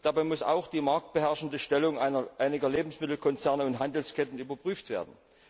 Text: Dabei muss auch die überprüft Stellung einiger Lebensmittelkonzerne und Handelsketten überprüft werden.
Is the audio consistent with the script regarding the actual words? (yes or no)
no